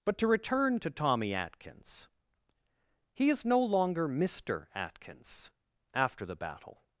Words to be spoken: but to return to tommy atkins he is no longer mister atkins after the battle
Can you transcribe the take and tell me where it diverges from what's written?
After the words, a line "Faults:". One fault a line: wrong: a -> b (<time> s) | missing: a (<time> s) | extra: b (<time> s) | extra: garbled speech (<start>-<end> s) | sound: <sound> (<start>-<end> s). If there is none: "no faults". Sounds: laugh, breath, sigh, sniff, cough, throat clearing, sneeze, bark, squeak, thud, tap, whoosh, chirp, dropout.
but to return to tommy atkins he is no longer mister atkins after the battle
Faults:
no faults